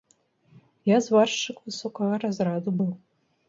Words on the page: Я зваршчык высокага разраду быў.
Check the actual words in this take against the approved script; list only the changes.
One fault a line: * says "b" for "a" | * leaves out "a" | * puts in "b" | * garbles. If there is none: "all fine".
all fine